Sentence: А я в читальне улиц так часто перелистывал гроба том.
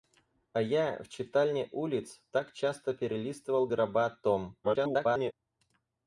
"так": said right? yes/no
yes